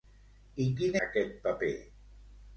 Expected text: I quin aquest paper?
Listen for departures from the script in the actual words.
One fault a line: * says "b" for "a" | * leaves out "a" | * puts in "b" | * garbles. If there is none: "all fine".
all fine